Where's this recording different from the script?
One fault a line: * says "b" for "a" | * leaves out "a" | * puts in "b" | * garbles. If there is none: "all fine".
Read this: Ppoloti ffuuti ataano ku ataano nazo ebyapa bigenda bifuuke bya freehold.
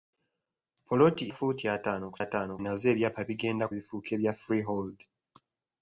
all fine